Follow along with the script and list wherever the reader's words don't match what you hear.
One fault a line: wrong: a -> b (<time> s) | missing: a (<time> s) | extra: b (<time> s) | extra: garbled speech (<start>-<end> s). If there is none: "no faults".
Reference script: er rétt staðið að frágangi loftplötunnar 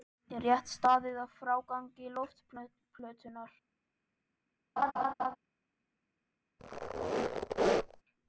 no faults